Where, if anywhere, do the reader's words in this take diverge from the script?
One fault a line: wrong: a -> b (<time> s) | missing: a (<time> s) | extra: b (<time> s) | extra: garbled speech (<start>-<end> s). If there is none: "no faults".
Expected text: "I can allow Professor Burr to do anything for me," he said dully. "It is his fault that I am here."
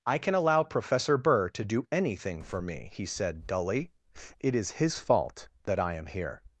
no faults